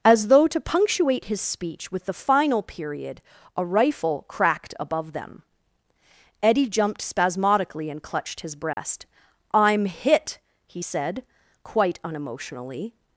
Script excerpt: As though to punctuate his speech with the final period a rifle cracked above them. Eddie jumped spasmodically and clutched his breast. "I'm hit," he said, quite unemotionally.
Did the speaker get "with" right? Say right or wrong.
right